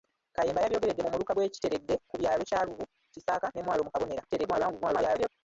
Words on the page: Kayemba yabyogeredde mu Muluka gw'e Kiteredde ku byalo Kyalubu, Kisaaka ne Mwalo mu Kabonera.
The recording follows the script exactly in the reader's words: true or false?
false